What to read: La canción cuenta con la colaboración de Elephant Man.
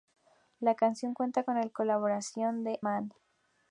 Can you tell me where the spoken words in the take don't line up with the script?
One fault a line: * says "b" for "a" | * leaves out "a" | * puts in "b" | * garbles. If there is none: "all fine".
* leaves out "Elephant"